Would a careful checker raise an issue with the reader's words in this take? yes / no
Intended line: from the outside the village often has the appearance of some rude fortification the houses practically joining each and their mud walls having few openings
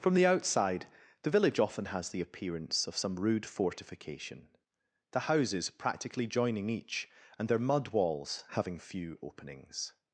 no